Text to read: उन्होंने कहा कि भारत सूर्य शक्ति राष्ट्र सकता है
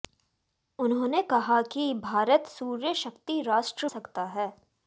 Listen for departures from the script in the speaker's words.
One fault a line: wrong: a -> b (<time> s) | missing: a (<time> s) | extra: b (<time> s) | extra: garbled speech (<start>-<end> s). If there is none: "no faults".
no faults